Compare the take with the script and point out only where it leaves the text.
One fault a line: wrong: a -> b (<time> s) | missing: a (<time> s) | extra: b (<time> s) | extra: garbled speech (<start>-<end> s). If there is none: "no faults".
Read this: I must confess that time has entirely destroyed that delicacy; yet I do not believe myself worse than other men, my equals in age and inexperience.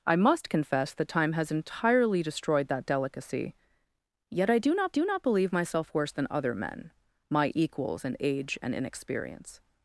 extra: do not (4.9 s)